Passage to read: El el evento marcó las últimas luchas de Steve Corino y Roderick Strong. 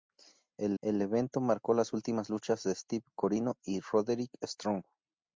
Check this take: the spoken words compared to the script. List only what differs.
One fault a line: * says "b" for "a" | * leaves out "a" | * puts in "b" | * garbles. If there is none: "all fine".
all fine